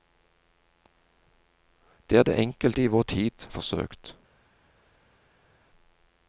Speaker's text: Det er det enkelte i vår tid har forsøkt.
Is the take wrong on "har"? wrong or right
wrong